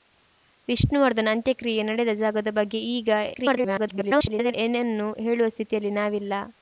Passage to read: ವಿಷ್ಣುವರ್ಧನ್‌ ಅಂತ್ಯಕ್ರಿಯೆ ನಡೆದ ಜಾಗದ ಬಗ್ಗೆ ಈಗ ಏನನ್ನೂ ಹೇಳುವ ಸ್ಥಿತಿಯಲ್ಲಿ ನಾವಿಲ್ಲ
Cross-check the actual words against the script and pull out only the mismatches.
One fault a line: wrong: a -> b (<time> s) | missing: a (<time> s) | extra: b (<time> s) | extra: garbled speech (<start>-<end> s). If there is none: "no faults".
extra: garbled speech (3.3-4.5 s)